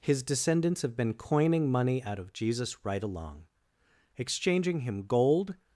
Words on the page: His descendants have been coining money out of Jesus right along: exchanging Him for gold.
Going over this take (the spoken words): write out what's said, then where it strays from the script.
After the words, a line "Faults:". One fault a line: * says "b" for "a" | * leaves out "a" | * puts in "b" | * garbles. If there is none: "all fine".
His descendants have been coining money out of Jesus right along: exchanging Him gold.
Faults:
* leaves out "for"